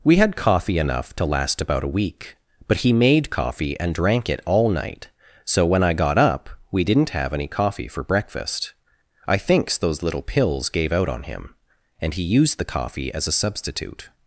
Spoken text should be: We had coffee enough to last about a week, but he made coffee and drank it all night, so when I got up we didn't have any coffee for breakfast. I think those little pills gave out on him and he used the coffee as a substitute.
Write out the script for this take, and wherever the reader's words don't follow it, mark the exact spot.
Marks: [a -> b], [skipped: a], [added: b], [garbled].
We had coffee enough to last about a week, but he made coffee and drank it all night, so when I got up we didn't have any coffee for breakfast. I [think -> thinks] those little pills gave out on him and he used the coffee as a substitute.